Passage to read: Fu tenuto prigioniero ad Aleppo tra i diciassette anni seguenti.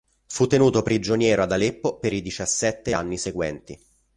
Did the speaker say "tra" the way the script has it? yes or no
no